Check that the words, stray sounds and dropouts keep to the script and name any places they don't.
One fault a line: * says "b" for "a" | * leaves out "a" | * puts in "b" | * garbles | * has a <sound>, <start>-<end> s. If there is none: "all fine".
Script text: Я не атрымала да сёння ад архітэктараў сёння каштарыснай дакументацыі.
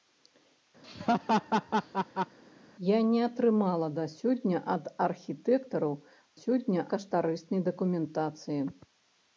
* has a laugh, 0.8-2.4 s